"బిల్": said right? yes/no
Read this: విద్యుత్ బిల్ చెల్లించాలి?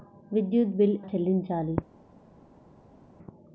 yes